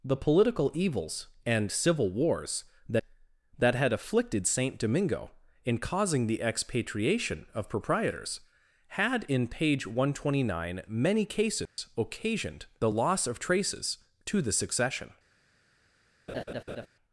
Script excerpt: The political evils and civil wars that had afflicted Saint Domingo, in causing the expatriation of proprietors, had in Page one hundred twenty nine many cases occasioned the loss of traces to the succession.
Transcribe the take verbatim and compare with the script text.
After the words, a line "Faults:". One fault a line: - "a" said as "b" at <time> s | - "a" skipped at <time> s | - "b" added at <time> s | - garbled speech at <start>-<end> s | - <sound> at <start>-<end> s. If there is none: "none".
The political evils and civil wars that that had afflicted Saint Domingo, in causing the expatriation of proprietors, had in Page one hundred twenty nine many cases occasioned the loss of traces to the succession.
Faults:
- "that" added at 3.6 s
- dropout at 11.7-11.8 s
- laugh at 16.3-16.9 s